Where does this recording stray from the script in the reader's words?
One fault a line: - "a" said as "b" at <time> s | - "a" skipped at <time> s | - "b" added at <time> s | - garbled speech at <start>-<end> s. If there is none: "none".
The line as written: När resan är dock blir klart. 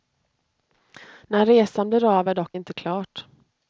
- "blir av" added at 1.9 s
- "blir" said as "inte" at 2.5 s